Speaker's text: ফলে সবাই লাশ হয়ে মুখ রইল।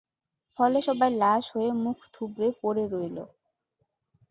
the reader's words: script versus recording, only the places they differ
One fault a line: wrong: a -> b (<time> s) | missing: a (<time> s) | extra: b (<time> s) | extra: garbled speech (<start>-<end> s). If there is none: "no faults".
extra: থুবড়ে পড়ে (2.1 s)